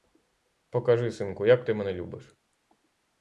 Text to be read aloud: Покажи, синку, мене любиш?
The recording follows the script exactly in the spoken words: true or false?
false